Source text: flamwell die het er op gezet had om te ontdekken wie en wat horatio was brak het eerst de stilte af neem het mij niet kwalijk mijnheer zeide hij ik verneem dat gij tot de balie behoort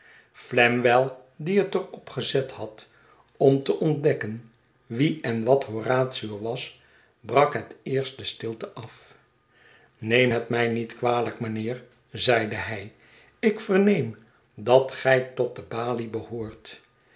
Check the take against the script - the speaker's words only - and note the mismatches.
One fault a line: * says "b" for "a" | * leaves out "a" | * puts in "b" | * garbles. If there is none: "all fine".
all fine